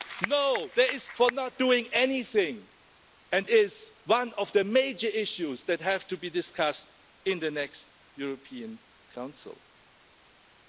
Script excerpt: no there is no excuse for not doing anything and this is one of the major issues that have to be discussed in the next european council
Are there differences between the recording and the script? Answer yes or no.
yes